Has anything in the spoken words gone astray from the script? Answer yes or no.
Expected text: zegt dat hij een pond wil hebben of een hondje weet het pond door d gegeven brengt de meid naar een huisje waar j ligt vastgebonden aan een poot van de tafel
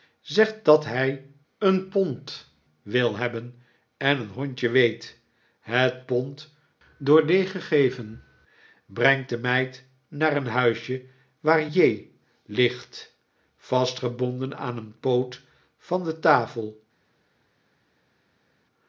yes